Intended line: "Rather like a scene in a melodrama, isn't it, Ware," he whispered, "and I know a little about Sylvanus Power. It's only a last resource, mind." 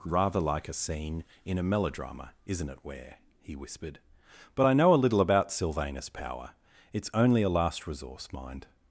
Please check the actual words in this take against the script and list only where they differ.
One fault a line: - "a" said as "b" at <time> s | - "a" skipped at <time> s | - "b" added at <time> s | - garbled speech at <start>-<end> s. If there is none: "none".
- "and" said as "but" at 4.5 s